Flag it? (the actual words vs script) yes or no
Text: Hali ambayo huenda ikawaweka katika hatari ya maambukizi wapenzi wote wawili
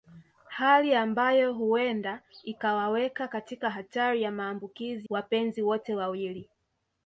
no